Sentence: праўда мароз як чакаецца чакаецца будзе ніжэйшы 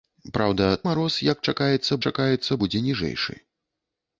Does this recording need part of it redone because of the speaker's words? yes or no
no